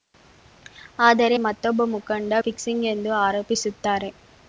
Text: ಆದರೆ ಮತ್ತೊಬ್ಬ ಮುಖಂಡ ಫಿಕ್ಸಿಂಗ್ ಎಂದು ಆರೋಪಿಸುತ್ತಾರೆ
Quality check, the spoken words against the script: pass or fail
pass